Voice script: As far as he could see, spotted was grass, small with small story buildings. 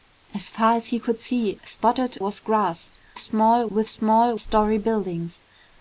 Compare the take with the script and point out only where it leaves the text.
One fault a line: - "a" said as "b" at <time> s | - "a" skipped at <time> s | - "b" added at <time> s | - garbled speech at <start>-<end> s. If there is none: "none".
none